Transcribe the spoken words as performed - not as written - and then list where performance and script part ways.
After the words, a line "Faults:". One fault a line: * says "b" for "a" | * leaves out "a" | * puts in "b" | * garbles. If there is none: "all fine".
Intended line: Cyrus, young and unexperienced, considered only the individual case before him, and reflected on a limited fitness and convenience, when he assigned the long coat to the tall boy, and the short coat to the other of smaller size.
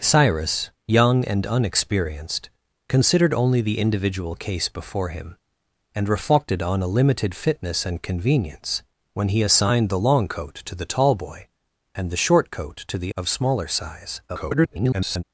Cyrus, young and unexperienced, considered only the individual case before him, and reflected on a limited fitness and convenience, when he assigned the long coat to the tall boy, and the short coat to the of smaller size. [garbled]
Faults:
* leaves out "other"
* garbles